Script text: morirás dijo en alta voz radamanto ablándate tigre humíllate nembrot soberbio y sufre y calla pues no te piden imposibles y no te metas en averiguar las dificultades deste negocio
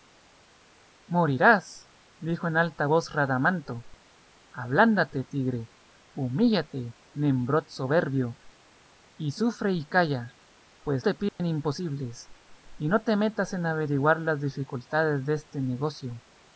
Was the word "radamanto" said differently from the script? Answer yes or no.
no